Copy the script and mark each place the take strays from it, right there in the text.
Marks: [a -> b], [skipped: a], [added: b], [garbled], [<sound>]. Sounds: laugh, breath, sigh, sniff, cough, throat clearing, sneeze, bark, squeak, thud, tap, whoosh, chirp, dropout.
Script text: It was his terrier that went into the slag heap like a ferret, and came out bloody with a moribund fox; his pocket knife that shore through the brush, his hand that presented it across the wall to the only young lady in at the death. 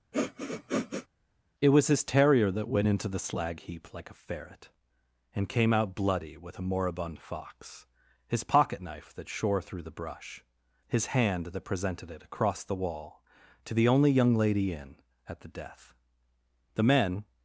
[sniff] It was his terrier that went into the slag heap like a ferret, and came out bloody with a moribund fox; his pocket knife that shore through the brush, his hand that presented it across the wall to the only young lady in at the death. [added: The men]